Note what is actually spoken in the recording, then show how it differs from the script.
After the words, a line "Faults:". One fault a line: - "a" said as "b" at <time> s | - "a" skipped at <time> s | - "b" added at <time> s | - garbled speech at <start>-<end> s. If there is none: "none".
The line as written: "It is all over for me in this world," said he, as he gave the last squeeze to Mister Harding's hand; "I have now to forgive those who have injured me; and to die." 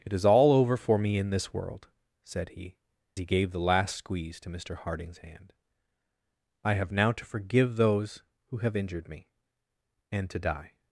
"It is all over for me in this world," said he, he gave the last squeeze to Mister Harding's hand; "I have now to forgive those who have injured me; and to die."
Faults:
- "as" skipped at 2.8 s